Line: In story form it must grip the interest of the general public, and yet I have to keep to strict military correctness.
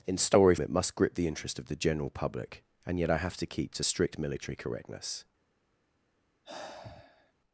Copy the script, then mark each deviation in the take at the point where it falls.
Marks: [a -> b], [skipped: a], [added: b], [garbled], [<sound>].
In story [skipped: form] it must grip the interest of the general public, and yet I have to keep to strict military correctness. [sigh]